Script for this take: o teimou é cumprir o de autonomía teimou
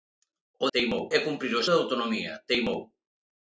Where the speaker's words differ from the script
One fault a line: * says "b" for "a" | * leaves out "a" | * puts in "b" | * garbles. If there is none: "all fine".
all fine